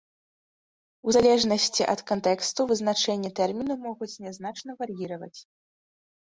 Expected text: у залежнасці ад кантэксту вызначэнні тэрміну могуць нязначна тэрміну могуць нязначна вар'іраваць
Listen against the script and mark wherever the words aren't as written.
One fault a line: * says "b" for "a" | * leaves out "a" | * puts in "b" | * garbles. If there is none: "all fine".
* leaves out "тэрміну могуць нязначна"